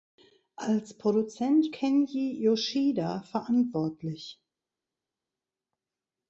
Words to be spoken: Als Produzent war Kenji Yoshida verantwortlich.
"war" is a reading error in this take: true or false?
true